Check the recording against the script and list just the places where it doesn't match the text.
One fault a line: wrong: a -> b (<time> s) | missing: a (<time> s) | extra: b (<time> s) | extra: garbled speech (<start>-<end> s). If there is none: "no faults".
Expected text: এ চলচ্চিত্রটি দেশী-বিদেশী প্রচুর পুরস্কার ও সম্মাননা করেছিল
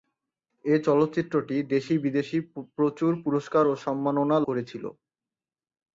no faults